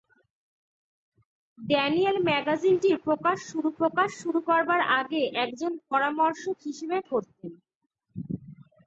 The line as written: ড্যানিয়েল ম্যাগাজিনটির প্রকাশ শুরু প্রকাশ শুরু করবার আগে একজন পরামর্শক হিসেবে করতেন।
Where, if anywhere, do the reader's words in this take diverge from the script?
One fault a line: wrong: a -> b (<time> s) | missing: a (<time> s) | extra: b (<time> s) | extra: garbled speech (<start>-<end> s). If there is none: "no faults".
no faults